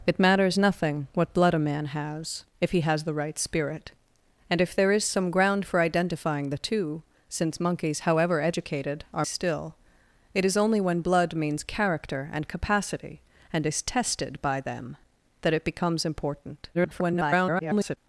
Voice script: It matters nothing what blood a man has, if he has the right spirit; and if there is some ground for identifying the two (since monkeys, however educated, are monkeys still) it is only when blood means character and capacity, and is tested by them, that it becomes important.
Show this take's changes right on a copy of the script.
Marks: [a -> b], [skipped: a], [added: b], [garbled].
It matters nothing what blood a man has, if he has the right spirit; and if there is some ground for identifying the two (since monkeys, however educated, are [skipped: monkeys] still) it is only when blood means character and capacity, and is tested by them, that it becomes important. [garbled]